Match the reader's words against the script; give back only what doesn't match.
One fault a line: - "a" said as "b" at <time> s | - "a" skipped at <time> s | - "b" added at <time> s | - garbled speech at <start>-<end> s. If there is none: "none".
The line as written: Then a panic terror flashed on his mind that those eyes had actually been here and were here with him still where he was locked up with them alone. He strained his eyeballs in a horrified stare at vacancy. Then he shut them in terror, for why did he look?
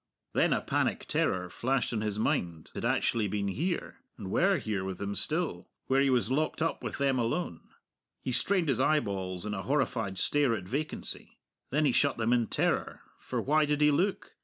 - "that those eyes" skipped at 2.7 s